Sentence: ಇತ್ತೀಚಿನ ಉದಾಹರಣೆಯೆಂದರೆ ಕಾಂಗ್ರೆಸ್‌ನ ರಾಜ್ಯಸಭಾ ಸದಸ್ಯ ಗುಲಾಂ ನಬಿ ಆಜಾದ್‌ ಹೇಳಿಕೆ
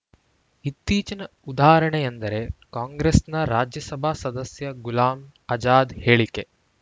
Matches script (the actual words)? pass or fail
fail